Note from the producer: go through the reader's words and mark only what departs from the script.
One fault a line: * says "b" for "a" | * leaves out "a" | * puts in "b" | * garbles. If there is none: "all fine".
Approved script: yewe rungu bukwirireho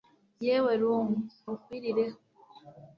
all fine